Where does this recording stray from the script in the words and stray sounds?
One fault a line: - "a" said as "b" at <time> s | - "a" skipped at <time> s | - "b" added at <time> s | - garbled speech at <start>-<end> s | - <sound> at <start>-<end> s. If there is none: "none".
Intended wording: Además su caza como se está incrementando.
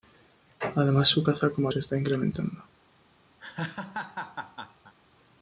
- laugh at 3.4-4.9 s